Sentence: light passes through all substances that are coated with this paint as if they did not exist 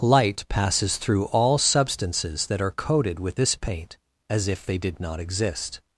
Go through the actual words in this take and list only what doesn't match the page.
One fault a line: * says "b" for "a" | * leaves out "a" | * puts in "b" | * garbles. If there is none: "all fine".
all fine